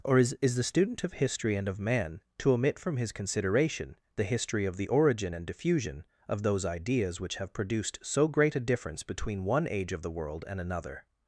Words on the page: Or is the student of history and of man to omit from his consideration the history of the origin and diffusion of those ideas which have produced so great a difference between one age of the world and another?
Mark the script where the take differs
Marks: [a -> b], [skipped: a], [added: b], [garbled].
Or is [added: is] the student of history and of man to omit from his consideration the history of the origin and diffusion of those ideas which have produced so great a difference between one age of the world and another?